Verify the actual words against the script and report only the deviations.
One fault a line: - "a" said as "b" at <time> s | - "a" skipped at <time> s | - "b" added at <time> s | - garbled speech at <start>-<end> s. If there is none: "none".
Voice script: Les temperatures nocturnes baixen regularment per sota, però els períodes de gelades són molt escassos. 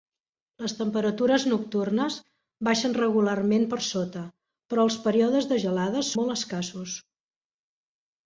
- "són" skipped at 6.1 s